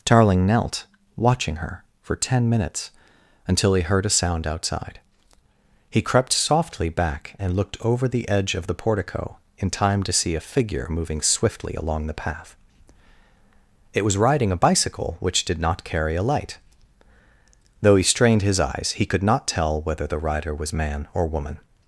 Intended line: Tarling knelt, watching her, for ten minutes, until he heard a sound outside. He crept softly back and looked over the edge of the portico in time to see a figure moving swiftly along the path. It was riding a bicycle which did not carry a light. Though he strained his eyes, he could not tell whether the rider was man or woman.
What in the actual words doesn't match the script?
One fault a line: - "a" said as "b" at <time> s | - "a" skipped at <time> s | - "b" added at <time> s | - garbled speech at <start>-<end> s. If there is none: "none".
none